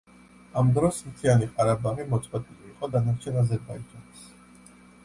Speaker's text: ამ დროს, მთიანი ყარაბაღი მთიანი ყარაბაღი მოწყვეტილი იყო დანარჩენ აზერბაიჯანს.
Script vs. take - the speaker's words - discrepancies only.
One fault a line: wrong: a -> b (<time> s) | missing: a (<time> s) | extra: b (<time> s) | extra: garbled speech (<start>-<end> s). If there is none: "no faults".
missing: მთიანი ყარაბაღი (2.1 s)